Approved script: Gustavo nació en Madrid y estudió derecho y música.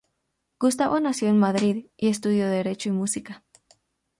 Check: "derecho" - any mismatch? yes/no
no